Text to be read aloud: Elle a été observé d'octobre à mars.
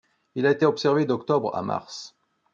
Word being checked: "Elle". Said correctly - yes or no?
no